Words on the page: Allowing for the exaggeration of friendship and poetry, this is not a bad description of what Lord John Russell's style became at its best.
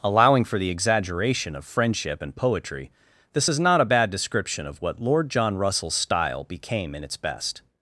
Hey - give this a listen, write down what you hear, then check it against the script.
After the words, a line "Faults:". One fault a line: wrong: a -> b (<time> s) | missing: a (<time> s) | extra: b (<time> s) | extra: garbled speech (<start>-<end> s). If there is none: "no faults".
Allowing for the exaggeration of friendship and poetry, this is not a bad description of what Lord John Russell's style became in its best.
Faults:
wrong: at -> in (6.9 s)